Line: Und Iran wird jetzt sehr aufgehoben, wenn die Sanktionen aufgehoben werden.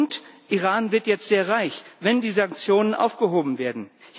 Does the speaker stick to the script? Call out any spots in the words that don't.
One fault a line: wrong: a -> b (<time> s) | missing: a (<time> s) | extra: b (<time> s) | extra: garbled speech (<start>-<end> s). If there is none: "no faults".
wrong: aufgehoben -> reich (1.5 s)